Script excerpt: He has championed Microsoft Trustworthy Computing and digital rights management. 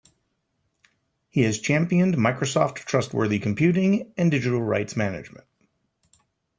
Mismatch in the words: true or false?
false